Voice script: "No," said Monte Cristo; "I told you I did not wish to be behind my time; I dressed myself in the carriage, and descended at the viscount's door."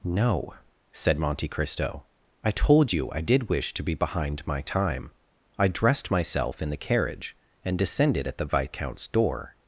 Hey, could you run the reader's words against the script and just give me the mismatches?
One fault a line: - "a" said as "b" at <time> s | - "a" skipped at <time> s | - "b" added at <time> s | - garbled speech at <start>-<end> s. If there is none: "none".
- "not" skipped at 3.5 s